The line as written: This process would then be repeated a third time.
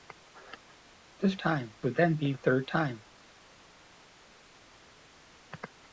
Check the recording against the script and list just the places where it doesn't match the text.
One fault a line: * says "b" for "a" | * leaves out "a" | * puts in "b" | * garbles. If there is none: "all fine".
* says "time" for "process"
* leaves out "repeated"